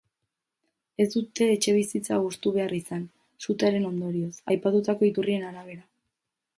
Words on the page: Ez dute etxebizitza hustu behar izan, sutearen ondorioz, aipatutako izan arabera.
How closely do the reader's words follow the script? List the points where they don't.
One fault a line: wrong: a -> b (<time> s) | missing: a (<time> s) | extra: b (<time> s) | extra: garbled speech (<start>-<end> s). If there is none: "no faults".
wrong: izan -> iturrien (5.1 s)